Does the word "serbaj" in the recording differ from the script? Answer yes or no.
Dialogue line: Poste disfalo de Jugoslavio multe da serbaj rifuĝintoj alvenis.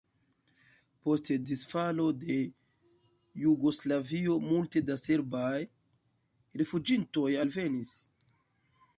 no